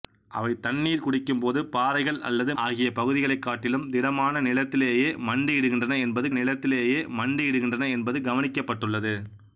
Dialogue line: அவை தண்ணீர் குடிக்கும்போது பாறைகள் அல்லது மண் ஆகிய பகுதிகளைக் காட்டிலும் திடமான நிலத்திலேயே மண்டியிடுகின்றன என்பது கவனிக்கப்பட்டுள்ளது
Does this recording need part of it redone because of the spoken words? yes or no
yes